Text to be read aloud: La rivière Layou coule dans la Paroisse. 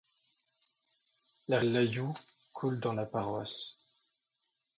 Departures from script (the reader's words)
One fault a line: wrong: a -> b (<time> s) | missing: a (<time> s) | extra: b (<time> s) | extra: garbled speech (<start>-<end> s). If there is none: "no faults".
missing: rivière (1.6 s)